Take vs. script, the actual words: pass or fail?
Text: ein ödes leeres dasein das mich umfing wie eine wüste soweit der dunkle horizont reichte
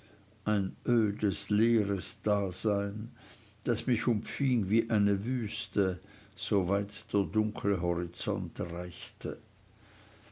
pass